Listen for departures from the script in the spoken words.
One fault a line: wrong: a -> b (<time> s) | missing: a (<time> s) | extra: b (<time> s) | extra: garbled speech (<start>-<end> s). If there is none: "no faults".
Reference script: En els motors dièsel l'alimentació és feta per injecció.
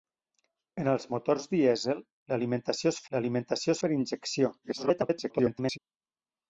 wrong: feta -> l'alimentació (3.2 s)
extra: garbled speech (4.6-5.8 s)